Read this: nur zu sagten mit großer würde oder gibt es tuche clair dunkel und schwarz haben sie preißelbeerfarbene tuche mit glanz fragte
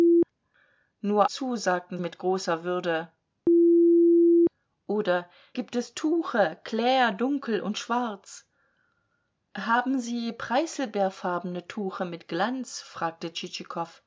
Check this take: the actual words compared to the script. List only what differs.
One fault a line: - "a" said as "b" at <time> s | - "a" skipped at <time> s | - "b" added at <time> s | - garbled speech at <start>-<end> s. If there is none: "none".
none